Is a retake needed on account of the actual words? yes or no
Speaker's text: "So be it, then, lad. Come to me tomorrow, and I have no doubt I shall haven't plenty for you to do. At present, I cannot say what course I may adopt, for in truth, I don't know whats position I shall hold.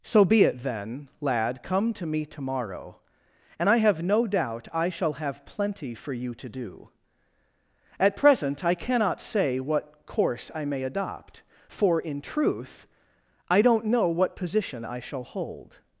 yes